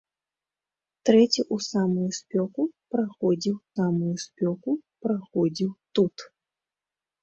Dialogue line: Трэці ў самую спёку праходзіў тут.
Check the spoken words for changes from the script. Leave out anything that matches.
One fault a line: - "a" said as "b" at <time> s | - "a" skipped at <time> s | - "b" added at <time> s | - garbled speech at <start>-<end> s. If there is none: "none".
- "самую спёку праходзіў" added at 3.7 s